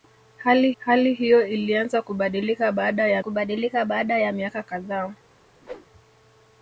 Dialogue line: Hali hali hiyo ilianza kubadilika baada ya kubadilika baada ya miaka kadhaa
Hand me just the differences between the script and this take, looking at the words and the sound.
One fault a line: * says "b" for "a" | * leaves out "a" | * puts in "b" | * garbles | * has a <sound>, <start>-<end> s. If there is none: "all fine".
* has a whoosh, 5.6-5.9 s